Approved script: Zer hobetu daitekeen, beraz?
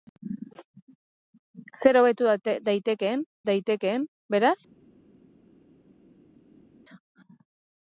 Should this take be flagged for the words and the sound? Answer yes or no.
yes